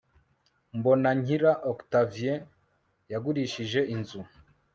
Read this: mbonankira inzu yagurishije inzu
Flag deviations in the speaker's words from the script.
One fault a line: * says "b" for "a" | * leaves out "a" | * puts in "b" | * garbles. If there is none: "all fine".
* says "octavien" for "inzu"